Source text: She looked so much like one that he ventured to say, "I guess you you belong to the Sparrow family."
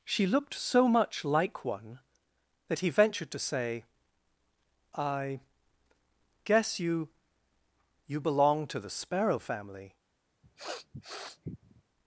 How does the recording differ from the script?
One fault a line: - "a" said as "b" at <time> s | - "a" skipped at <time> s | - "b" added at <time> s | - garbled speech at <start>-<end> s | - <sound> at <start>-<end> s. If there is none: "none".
- sniff at 10.4-11.8 s